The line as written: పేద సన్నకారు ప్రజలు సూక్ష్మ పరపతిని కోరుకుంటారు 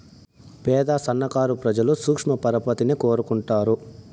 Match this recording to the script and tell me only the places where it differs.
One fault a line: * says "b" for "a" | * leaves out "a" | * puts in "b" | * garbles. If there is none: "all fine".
all fine